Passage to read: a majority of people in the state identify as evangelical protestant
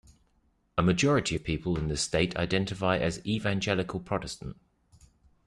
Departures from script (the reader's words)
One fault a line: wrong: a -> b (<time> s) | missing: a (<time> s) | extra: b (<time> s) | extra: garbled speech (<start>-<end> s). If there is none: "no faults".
no faults